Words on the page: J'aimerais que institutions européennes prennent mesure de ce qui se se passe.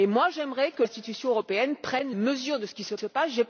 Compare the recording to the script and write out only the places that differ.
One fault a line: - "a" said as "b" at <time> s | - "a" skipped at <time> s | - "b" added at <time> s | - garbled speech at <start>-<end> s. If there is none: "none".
none